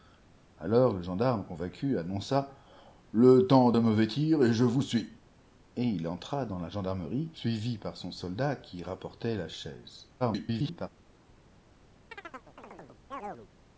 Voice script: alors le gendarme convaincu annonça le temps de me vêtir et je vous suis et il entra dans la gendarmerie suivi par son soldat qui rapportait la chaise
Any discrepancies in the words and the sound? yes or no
yes